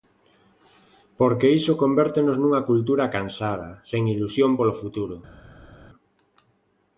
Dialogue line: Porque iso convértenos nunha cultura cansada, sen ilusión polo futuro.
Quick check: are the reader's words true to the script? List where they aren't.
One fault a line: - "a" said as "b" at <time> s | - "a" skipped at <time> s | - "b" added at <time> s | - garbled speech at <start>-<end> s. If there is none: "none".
none